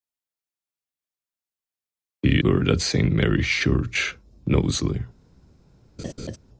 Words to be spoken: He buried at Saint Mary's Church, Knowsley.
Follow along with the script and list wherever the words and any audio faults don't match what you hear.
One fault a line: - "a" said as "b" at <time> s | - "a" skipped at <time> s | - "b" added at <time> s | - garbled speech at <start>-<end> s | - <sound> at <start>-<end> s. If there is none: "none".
- laugh at 6.0-6.4 s